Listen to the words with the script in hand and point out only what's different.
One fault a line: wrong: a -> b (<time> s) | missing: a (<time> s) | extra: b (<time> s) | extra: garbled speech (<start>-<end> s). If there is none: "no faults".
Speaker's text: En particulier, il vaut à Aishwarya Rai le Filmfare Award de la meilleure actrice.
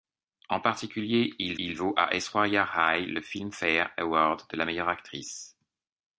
extra: il (1.6 s)